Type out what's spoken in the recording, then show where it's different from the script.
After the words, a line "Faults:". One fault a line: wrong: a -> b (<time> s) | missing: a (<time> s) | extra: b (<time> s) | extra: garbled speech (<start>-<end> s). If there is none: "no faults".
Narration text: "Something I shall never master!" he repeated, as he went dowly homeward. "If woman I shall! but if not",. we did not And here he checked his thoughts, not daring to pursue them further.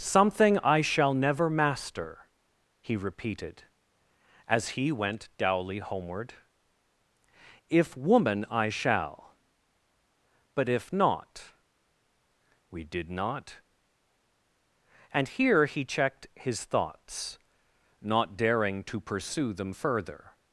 "Something I shall never master!" he repeated, as he went dowly homeward. "If woman I shall! but if not",. we did not And here he checked his thoughts, not daring to pursue them further.
Faults:
no faults